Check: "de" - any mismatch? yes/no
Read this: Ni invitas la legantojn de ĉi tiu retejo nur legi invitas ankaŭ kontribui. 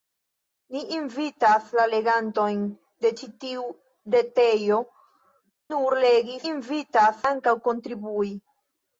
no